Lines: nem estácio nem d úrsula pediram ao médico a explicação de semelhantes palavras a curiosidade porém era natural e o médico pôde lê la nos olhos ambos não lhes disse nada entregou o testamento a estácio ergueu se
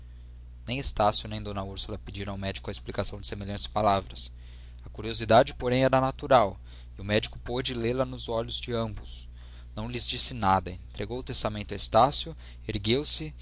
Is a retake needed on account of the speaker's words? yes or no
yes